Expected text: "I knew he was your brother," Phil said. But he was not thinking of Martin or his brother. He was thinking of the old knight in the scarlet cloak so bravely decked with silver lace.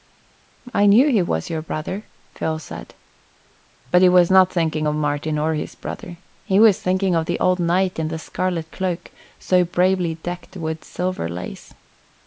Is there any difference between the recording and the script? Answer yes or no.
no